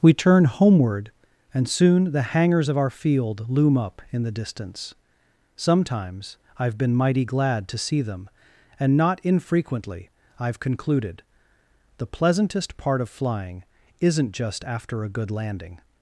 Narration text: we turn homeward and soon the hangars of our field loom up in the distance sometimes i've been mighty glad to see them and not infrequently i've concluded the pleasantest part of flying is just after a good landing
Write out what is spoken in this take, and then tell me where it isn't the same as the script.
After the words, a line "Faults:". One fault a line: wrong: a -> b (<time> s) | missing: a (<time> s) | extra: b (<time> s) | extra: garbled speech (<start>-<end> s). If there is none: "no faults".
we turn homeward and soon the hangars of our field loom up in the distance sometimes i've been mighty glad to see them and not infrequently i've concluded the pleasantest part of flying isn't just after a good landing
Faults:
wrong: is -> isn't (14.0 s)